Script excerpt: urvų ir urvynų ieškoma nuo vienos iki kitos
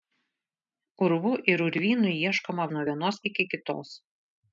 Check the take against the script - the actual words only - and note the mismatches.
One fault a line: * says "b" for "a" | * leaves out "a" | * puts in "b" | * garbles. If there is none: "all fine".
all fine